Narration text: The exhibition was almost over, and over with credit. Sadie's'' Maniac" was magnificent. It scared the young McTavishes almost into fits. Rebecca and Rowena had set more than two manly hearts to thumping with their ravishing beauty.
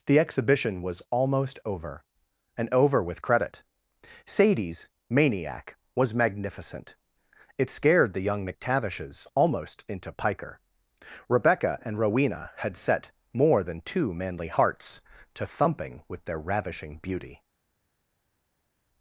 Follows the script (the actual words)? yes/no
no